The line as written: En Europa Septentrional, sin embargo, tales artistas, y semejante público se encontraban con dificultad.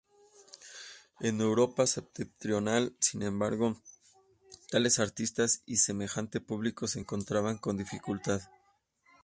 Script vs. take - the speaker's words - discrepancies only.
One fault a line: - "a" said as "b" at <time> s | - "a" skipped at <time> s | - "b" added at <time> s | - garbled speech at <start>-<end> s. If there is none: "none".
none